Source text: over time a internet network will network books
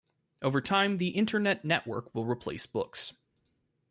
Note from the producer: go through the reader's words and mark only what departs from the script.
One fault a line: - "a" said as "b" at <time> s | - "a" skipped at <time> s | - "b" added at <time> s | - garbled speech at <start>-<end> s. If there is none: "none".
- "a" said as "the" at 1.0 s
- "network" said as "replace" at 2.2 s